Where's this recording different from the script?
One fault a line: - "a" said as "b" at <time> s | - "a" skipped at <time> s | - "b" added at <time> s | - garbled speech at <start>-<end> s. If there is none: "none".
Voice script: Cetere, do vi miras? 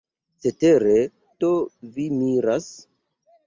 none